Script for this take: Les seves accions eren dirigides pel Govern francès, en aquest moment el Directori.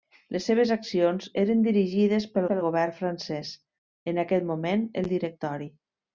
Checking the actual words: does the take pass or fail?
fail